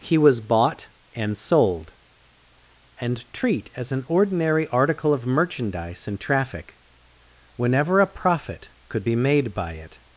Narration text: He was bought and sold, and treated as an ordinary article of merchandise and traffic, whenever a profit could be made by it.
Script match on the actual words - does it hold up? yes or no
no